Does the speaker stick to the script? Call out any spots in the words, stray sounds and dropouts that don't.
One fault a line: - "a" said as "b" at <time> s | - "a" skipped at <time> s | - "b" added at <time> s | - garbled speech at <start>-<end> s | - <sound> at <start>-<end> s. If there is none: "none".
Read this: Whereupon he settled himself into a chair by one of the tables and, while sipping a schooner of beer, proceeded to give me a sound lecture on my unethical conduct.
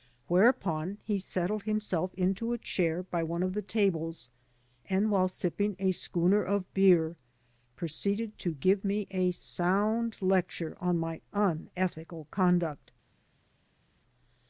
none